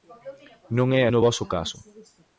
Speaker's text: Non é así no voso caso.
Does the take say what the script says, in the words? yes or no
no